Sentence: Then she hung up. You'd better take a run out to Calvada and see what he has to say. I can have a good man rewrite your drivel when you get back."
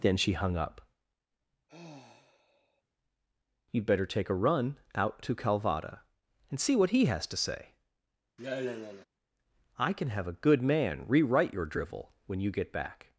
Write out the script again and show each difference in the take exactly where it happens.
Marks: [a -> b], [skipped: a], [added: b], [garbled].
Then she hung up. You'd better take a run out to Calvada and see what he has to say. I can have a good man rewrite your drivel when you get back."